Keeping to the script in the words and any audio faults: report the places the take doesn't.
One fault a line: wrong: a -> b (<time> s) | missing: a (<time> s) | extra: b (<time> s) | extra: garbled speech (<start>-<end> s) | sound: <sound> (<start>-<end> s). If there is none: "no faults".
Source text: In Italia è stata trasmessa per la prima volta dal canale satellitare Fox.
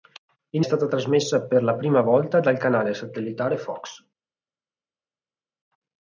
missing: Italia (0.6 s)